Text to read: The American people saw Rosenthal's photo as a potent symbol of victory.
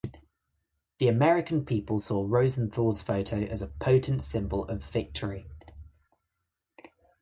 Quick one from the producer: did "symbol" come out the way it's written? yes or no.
yes